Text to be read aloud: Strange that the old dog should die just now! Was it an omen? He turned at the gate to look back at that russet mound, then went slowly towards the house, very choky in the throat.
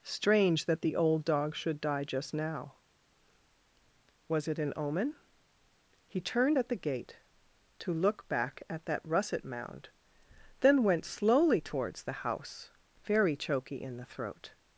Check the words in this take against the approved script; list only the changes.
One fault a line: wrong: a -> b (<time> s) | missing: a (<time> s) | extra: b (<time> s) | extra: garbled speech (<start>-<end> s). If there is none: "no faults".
no faults